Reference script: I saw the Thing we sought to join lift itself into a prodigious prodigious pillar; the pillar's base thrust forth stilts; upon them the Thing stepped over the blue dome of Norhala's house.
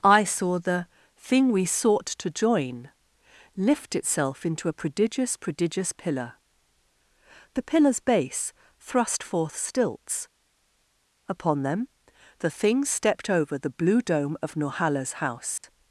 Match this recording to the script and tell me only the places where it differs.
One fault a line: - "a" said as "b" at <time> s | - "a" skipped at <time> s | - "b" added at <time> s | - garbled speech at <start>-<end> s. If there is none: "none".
none